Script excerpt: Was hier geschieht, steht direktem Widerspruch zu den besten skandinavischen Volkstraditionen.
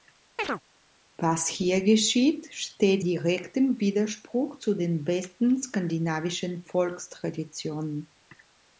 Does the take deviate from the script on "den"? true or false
false